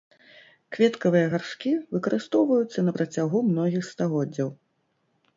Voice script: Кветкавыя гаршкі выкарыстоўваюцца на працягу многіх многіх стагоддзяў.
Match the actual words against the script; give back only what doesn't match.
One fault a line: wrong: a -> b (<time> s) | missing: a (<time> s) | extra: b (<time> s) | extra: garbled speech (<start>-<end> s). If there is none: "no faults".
missing: многіх (3.9 s)